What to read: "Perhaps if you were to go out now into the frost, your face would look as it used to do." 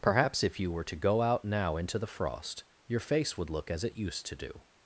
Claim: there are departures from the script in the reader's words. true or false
false